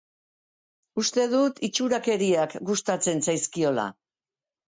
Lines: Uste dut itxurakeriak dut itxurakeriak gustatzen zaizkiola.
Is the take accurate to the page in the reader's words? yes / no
no